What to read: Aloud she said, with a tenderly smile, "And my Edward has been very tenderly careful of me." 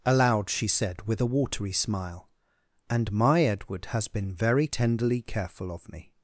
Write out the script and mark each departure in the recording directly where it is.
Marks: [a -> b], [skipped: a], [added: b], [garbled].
Aloud she said, with a [tenderly -> watery] smile, "And my Edward has been very tenderly careful of me."